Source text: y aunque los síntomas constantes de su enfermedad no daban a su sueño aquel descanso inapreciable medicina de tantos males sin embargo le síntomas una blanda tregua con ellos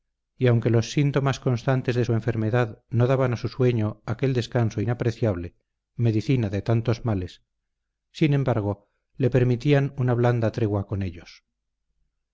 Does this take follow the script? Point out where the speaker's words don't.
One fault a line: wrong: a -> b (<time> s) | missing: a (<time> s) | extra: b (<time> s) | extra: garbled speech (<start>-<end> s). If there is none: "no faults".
wrong: síntomas -> permitían (9.3 s)